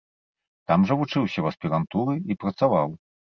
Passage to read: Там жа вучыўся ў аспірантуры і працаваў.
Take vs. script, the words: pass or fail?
pass